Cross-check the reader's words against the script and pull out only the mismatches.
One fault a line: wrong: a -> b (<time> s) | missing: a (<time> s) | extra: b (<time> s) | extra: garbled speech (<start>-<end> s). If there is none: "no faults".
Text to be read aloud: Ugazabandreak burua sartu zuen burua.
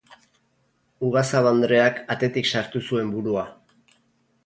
wrong: burua -> atetik (2.2 s)